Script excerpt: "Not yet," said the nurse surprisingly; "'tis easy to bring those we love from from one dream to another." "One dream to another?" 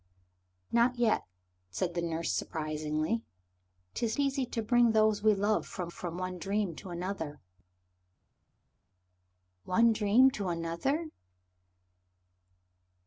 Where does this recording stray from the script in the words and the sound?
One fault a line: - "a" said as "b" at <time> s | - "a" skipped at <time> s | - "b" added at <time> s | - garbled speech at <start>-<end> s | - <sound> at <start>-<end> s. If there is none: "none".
none